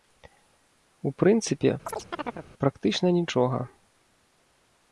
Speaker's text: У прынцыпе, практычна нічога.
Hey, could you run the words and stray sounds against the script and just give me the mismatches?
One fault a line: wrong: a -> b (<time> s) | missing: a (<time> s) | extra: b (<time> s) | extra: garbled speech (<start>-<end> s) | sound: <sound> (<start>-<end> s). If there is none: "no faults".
sound: chirp (1.9-2.5 s)